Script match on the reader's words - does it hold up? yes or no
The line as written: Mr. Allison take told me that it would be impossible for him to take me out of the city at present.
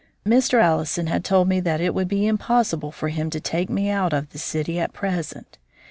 no